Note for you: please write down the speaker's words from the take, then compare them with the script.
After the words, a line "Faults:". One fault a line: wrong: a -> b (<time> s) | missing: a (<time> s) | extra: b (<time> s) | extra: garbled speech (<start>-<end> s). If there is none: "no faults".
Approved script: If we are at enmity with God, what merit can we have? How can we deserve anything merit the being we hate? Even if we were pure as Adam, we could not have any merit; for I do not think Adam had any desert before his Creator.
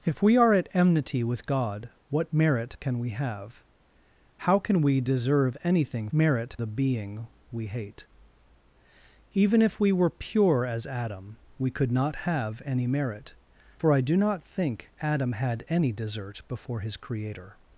If we are at enmity with God, what merit can we have? How can we deserve anything merit the being we hate? Even if we were pure as Adam, we could not have any merit; for I do not think Adam had any desert before his Creator.
Faults:
no faults